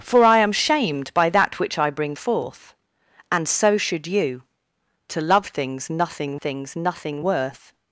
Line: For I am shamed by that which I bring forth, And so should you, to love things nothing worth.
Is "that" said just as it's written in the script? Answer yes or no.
yes